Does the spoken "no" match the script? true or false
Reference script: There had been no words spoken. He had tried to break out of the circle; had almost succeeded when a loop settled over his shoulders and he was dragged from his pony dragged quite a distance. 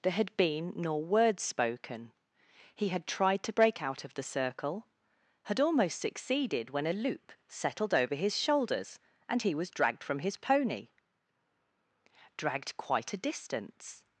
false